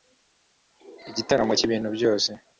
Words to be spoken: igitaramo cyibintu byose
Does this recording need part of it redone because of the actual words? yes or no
no